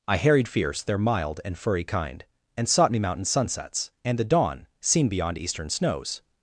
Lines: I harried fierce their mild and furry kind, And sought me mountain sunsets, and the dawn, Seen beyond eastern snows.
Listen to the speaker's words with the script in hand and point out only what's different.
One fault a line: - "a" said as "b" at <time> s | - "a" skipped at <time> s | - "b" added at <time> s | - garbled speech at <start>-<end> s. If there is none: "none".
none